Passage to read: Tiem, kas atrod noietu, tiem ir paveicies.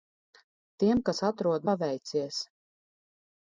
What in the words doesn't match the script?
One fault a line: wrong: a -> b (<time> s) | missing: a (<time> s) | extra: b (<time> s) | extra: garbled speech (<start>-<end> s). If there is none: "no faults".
missing: noietu tiem ir (1.7 s)